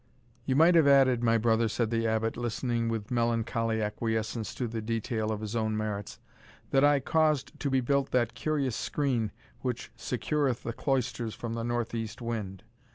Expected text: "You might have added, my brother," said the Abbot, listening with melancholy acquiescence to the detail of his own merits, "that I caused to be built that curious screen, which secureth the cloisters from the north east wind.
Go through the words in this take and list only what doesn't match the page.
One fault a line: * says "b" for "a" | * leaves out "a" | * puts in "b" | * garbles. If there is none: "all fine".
all fine